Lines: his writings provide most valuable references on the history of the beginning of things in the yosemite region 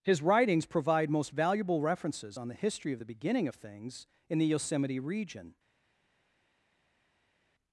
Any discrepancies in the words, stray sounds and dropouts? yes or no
no